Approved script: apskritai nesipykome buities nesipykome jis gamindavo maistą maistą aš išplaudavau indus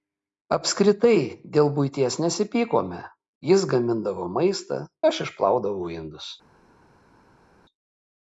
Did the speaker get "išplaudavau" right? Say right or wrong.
right